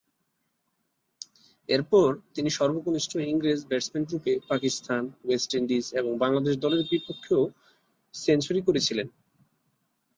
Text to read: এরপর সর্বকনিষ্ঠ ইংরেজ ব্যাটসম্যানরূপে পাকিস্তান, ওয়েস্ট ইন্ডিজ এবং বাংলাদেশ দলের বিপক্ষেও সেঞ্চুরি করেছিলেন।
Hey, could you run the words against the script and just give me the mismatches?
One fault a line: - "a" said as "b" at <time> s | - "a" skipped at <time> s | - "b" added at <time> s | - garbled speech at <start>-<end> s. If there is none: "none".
- "তিনি" added at 2.4 s